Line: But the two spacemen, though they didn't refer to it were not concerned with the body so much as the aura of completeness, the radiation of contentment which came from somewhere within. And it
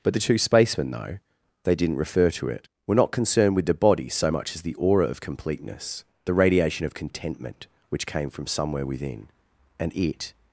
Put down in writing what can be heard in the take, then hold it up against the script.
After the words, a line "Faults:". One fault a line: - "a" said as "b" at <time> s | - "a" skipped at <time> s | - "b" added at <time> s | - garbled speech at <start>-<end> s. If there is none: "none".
But the two spacemen, though they didn't refer to it were not concerned with the body so much as the aura of completeness, the radiation of contentment which came from somewhere within. And it
Faults:
none